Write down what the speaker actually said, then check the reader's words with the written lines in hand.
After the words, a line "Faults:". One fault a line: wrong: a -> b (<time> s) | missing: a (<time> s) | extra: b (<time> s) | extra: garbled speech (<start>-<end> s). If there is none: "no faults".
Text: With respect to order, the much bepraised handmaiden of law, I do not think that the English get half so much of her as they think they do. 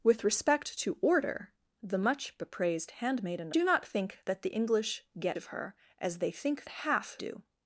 With respect to order, the much bepraised handmaiden do not think that the English get of her as they think half do.
Faults:
missing: of law I (3.5 s)
missing: half so much (5.4 s)
wrong: they -> half (6.7 s)